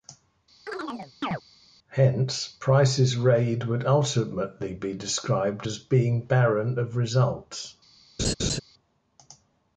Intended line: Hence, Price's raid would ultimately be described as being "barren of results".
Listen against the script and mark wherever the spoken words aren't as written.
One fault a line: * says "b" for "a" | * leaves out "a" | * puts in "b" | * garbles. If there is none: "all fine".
all fine